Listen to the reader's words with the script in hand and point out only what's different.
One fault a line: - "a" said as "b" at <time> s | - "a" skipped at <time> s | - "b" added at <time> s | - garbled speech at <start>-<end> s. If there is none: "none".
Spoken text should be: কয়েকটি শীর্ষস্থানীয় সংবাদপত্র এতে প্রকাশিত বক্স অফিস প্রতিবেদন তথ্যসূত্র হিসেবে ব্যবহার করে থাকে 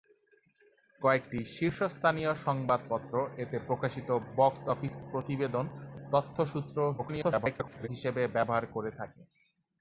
- garbled speech at 7.0-7.9 s